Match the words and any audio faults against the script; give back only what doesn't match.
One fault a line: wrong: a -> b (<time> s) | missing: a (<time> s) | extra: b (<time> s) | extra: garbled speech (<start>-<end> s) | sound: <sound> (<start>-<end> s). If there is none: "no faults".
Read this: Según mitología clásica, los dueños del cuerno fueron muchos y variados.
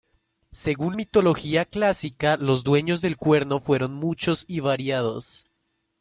no faults